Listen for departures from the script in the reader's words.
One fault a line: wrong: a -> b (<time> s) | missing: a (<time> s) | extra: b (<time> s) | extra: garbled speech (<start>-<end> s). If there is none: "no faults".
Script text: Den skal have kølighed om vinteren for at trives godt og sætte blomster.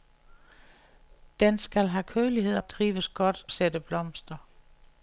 missing: om vinteren for (2.6 s)
missing: og (3.5 s)